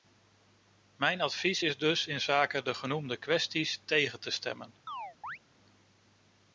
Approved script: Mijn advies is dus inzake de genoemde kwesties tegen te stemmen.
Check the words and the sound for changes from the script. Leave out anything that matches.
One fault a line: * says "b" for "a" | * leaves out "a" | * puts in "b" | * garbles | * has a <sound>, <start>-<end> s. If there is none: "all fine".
* has a chirp, 4.9-5.4 s